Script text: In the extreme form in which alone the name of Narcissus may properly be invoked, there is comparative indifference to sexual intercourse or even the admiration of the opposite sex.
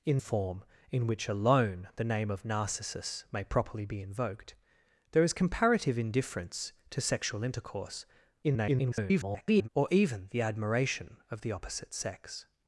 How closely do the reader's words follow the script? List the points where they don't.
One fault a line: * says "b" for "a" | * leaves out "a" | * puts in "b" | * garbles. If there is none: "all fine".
* leaves out "the extreme"
* garbles